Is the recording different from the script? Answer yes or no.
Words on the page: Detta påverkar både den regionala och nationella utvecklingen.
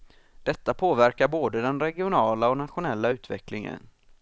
no